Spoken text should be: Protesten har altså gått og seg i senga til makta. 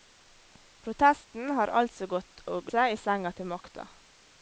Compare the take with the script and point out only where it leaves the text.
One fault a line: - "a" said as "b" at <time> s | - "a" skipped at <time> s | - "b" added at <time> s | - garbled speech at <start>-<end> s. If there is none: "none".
none